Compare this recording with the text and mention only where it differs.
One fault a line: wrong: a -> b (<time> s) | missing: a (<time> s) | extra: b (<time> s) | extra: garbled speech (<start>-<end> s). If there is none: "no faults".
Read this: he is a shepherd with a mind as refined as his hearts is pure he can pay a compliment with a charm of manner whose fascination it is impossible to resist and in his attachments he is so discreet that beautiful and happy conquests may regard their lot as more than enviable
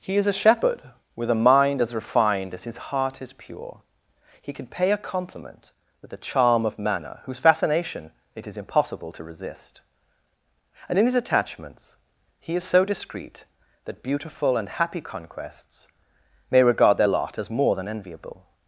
wrong: hearts -> heart (2.9 s)